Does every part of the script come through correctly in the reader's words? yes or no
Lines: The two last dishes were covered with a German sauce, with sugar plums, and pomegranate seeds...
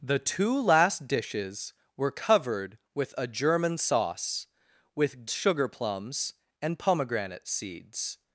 yes